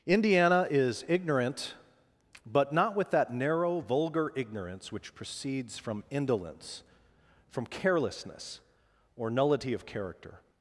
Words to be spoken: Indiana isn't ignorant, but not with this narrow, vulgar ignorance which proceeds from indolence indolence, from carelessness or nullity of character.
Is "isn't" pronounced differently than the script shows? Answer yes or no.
yes